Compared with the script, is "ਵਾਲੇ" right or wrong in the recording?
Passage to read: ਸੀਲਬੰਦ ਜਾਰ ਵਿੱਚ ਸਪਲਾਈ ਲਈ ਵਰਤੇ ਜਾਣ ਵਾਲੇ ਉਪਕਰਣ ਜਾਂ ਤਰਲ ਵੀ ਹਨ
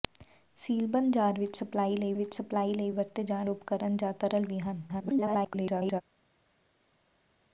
wrong